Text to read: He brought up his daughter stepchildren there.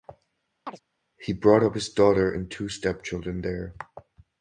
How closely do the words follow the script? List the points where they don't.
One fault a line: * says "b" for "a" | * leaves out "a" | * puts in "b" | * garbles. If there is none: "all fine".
* puts in "and two"